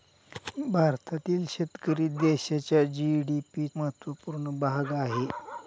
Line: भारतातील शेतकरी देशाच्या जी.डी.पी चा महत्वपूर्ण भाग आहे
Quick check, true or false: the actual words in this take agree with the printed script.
false